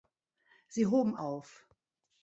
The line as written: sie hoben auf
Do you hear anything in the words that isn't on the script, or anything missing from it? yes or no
no